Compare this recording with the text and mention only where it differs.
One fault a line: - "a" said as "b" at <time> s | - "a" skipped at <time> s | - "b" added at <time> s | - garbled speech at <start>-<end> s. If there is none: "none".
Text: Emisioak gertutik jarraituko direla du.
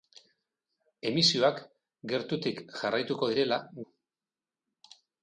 none